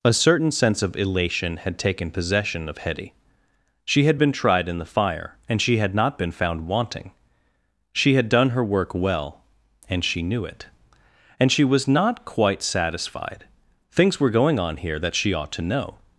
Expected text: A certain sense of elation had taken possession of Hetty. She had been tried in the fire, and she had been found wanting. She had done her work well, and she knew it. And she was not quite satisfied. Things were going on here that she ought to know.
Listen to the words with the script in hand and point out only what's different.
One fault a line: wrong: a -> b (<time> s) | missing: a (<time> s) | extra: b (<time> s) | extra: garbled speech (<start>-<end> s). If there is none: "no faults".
extra: not (5.9 s)